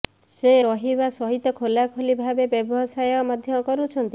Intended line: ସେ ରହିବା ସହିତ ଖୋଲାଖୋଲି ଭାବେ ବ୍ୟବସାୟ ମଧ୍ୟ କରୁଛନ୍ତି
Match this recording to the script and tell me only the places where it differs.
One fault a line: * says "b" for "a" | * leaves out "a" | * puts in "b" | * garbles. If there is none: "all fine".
all fine